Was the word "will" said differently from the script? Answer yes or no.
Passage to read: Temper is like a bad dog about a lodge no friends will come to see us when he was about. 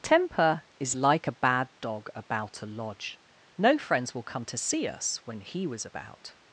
no